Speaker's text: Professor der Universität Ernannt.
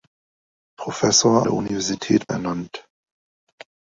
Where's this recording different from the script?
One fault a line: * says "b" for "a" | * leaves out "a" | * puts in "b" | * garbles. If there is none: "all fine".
all fine